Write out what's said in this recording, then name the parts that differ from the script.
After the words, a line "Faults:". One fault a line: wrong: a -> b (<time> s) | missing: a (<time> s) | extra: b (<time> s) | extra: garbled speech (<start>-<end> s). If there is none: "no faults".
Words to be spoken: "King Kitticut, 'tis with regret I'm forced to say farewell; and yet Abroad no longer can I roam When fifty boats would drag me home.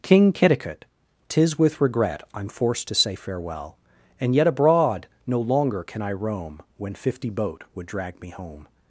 "King Kitticut, 'tis with regret I'm forced to say farewell; and yet Abroad no longer can I roam When fifty boat would drag me home.
Faults:
wrong: boats -> boat (7.3 s)